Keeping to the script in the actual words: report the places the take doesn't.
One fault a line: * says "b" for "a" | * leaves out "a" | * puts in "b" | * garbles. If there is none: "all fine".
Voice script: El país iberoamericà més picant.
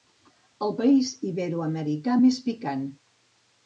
all fine